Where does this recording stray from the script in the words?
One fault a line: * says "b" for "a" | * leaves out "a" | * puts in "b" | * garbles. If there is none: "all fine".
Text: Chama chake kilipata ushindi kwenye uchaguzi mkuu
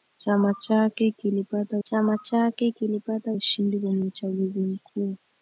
* puts in "chama chake kilipata"